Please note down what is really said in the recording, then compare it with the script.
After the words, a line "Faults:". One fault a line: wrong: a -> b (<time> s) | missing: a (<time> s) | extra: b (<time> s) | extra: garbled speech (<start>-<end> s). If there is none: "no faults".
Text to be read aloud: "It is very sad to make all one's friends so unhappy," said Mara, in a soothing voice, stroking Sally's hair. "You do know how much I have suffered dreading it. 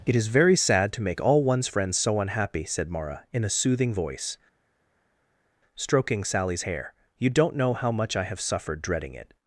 "It is very sad to make all one's friends so unhappy," said Mara, in a soothing voice, stroking Sally's hair. "You don't know how much I have suffered dreading it.
Faults:
wrong: do -> don't (7.3 s)